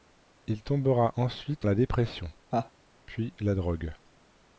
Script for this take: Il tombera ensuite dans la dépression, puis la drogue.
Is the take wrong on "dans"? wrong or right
wrong